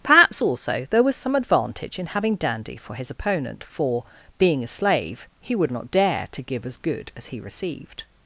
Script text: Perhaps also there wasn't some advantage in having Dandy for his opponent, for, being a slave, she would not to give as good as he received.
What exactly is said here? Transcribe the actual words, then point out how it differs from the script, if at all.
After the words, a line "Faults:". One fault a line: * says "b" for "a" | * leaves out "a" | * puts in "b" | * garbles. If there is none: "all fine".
Perhaps also there was some advantage in having Dandy for his opponent, for, being a slave, he would not dare to give as good as he received.
Faults:
* says "was" for "wasn't"
* says "he" for "she"
* puts in "dare"